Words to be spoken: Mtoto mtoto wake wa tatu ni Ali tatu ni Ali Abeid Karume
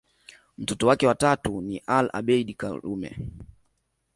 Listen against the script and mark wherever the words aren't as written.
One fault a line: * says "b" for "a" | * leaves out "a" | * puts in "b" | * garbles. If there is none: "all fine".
* leaves out "mtoto"
* leaves out "tatu ni Ali"